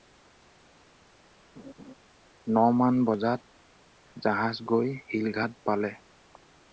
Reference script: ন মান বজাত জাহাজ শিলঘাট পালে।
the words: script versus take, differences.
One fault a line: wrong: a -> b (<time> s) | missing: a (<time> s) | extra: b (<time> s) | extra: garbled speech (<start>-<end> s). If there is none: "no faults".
extra: গৈ (4.7 s)